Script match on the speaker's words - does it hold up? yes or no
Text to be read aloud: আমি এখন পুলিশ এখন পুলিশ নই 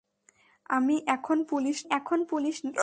yes